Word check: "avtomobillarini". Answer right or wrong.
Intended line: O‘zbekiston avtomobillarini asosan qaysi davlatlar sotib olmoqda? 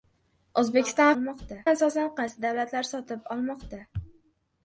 wrong